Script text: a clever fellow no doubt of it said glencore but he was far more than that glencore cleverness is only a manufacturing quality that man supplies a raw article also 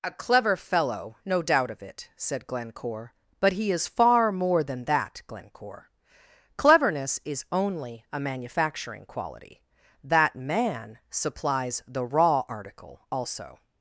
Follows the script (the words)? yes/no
no